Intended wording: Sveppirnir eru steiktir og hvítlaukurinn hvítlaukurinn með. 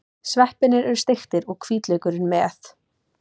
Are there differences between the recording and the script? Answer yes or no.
yes